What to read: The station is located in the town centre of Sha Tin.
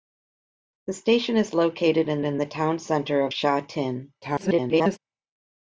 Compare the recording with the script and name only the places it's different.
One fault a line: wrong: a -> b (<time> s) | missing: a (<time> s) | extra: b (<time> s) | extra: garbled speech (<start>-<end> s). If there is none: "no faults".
extra: in (2.2 s)
extra: garbled speech (4.2-5.0 s)